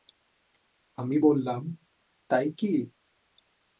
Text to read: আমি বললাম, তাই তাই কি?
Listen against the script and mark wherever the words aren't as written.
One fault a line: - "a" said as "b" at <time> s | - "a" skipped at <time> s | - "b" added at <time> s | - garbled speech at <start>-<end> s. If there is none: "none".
- "তাই" skipped at 2.5 s